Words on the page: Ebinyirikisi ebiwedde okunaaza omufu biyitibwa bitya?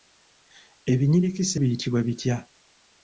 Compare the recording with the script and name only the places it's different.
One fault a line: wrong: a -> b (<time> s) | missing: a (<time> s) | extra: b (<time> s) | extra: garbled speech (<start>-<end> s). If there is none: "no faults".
missing: ebiwedde okunaaza omufu (1.6 s)